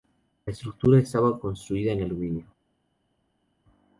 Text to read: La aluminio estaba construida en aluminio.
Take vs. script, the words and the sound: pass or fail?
fail